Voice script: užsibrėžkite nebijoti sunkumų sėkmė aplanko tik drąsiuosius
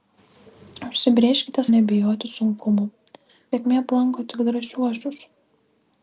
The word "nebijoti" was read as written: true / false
true